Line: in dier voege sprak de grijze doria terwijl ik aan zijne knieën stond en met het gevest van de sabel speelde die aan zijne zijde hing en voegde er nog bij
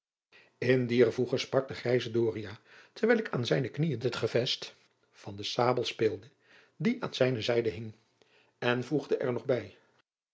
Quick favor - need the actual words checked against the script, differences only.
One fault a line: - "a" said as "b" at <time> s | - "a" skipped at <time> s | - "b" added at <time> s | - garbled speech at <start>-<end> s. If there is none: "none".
- "stond en met" skipped at 4.0 s